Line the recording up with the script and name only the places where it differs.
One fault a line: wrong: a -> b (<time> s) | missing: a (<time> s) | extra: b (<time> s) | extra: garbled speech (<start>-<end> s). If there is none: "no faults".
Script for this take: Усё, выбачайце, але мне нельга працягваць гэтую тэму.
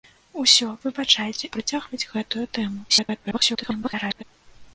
missing: але мне нельга (1.5 s)
extra: garbled speech (2.9-4.2 s)